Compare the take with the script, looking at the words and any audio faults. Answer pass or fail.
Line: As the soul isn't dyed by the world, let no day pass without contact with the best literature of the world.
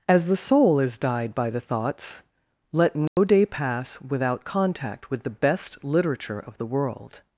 fail